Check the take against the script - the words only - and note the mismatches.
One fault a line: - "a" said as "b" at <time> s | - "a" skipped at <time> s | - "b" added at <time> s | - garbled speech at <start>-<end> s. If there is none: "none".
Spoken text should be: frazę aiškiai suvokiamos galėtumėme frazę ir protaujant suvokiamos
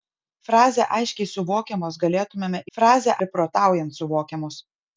none